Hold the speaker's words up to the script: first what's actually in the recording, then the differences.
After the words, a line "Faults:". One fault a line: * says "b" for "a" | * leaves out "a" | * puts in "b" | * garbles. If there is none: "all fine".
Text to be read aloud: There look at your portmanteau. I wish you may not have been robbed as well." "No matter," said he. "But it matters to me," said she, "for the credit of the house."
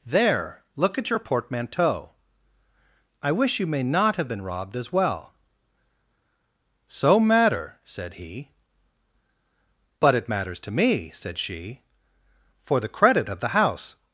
There look at your portmanteau. I wish you may not have been robbed as well." "So matter," said he. "But it matters to me," said she, "for the credit of the house."
Faults:
* says "So" for "No"